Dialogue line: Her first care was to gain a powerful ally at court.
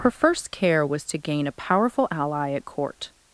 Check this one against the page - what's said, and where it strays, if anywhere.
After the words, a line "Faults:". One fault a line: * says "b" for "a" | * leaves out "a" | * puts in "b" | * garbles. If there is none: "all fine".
Her first care was to gain a powerful ally at court.
Faults:
all fine